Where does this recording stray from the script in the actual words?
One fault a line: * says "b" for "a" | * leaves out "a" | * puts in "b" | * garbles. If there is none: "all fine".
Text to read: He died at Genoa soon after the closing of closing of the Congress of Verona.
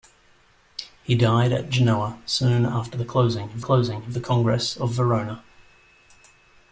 all fine